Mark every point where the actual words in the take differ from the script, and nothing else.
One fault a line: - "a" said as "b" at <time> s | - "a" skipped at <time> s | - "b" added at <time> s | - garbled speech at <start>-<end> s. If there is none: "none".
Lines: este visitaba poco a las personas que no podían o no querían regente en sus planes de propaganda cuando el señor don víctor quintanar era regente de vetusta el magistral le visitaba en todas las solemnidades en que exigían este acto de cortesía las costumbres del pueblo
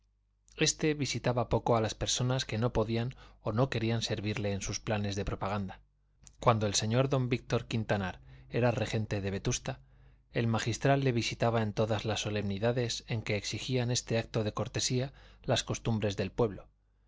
- "regente" said as "servirle" at 4.0 s